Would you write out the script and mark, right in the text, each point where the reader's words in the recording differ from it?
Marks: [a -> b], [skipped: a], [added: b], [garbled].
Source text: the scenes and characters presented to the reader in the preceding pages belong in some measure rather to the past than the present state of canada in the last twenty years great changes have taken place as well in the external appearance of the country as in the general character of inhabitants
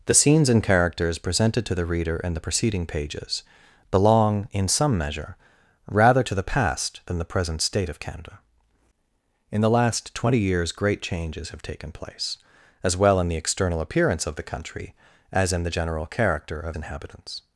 the scenes and characters presented to the reader in the preceding pages belong in some measure rather to the past than the present state of canada in the last twenty years great changes have taken place as well in the external appearance of the country as in the general character of inhabitants